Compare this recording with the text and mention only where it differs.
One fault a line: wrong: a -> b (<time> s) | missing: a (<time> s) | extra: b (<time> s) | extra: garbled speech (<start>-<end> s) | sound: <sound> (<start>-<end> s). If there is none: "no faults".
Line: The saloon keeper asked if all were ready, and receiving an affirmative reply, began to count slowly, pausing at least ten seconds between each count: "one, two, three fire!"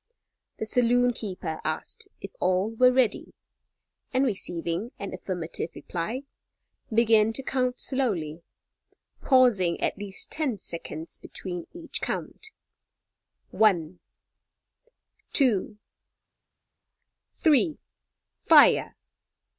no faults